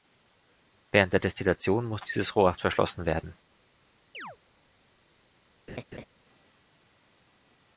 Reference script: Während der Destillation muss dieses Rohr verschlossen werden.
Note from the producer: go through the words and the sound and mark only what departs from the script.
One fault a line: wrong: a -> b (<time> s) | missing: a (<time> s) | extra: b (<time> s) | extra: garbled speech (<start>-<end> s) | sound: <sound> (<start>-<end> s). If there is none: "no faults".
sound: chirp (4.1-4.4 s)
sound: laugh (5.7-6.1 s)